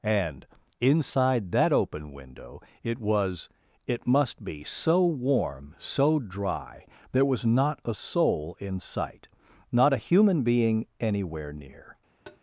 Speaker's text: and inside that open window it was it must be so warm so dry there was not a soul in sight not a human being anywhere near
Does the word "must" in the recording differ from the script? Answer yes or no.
no